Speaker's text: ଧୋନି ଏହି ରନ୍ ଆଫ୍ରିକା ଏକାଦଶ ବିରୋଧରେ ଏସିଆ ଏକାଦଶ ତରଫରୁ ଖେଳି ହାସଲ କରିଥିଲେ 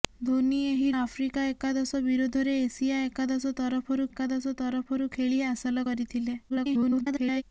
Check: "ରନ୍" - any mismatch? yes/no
yes